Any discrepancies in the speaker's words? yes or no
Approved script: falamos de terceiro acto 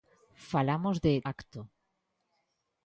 yes